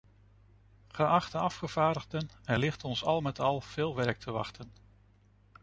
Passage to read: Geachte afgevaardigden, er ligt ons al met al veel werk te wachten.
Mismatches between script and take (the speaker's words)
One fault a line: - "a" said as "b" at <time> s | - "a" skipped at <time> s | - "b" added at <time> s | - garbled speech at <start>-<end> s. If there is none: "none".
none